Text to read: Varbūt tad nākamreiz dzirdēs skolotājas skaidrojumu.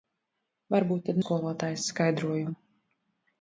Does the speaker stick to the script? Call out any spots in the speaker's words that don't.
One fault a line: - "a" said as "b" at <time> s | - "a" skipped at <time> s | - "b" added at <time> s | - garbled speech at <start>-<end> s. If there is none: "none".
- "nākamreiz dzirdēs" skipped at 1.2 s